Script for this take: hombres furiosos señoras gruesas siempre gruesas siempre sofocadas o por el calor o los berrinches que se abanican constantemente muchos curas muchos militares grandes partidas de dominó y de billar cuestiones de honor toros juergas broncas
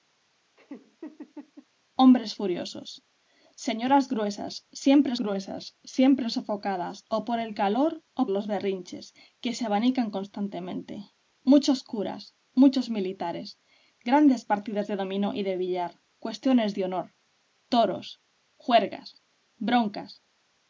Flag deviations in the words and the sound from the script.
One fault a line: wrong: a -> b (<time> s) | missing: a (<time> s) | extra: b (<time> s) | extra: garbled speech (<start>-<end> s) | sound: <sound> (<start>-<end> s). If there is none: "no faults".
sound: laugh (0.6-1.7 s)